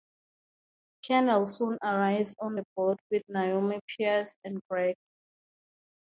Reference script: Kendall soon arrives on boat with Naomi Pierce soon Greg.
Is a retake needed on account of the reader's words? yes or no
yes